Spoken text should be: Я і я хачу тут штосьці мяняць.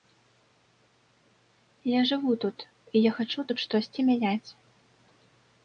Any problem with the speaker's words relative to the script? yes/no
yes